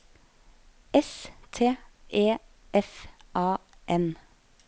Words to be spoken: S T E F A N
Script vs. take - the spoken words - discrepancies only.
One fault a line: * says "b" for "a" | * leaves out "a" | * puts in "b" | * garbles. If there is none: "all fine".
all fine